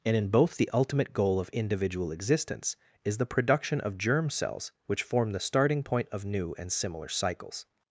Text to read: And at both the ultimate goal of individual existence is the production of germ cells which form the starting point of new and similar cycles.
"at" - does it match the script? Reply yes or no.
no